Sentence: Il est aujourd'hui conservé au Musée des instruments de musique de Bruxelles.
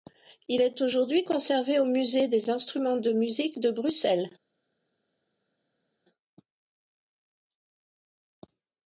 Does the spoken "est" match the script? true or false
true